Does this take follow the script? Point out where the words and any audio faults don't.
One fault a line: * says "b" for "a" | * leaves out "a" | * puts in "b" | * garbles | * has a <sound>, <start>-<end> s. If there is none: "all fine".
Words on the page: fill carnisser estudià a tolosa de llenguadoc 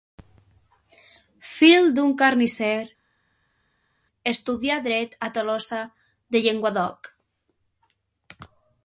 * puts in "d'un"
* puts in "dret"